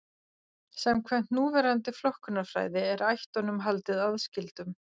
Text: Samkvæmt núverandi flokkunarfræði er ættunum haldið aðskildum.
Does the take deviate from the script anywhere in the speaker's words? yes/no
no